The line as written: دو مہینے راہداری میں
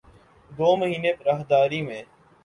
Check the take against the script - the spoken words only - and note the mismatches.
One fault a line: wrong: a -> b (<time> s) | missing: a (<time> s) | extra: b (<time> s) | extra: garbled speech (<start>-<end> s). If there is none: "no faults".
no faults